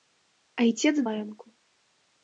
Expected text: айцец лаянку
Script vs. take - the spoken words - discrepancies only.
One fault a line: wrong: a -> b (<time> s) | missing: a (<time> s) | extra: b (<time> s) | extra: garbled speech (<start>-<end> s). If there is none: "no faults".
no faults